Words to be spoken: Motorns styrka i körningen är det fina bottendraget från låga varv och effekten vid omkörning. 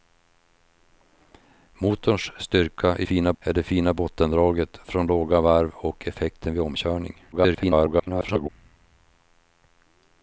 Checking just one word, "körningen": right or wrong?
wrong